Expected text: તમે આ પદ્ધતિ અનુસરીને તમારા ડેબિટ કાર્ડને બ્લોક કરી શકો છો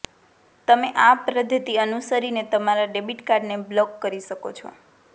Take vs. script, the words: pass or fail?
pass